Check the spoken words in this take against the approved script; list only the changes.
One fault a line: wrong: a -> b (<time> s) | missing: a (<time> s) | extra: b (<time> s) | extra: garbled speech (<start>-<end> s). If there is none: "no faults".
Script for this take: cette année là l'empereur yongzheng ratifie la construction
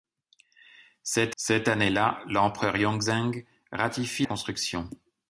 extra: cette (1.4 s)
missing: la (4.3 s)